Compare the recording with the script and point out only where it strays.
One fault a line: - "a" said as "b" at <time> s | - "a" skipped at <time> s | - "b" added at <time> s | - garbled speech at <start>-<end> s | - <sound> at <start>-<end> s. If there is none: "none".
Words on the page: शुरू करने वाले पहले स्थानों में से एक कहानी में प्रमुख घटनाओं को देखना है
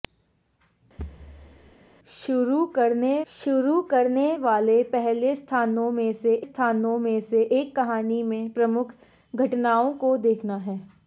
- thud at 1.0-1.8 s
- "शुरू करने" added at 3.3 s
- "स्थानों में से" added at 6.4 s